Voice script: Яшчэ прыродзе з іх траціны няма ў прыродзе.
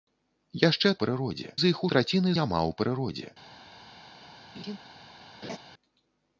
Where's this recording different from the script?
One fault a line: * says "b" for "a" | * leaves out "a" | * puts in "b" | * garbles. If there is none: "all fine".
all fine